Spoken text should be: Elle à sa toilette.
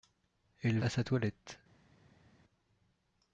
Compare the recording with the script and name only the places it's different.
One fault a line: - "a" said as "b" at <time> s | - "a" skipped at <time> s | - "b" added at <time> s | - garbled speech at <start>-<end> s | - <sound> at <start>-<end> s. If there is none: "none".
none